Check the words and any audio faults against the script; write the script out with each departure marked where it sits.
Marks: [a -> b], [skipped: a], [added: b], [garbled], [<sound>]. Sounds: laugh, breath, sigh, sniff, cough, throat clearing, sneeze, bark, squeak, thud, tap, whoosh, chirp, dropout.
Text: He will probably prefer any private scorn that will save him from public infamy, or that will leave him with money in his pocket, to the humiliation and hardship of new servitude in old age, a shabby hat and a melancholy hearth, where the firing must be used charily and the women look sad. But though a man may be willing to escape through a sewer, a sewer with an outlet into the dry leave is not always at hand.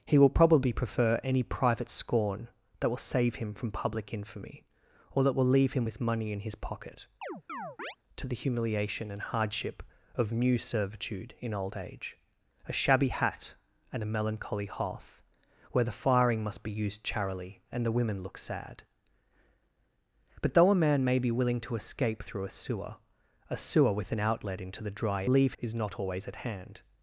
He will probably prefer any private scorn that will save him from public infamy, or that will leave him with money in his pocket, [chirp] to the humiliation and hardship of new servitude in old age, a shabby hat and a melancholy hearth, where the firing must be used charily and the women look sad. But though a man may be willing to escape through a sewer, a sewer with an outlet into the dry leave is not always at hand.